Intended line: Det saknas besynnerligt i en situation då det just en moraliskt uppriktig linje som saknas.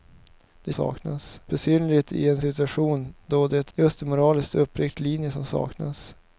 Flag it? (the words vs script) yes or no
no